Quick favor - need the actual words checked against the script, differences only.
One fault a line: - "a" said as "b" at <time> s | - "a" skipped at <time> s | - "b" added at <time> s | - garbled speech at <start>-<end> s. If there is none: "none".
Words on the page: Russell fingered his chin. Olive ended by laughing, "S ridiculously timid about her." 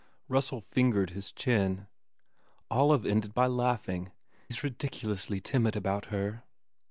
none